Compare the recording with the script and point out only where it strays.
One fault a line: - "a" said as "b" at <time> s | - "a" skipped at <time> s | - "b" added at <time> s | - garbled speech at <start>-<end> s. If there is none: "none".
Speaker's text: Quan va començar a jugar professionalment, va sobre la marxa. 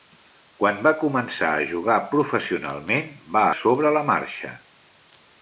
none